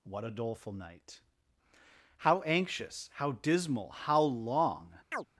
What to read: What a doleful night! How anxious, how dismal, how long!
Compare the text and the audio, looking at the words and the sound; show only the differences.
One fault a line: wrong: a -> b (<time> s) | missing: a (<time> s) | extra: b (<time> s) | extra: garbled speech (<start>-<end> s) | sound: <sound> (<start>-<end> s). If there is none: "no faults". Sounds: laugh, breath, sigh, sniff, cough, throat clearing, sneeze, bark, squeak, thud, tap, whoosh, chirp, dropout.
sound: chirp (5.1-5.3 s)